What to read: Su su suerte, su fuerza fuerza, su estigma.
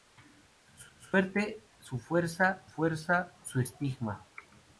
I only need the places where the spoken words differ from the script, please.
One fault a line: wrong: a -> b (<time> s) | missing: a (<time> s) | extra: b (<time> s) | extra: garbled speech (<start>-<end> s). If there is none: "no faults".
no faults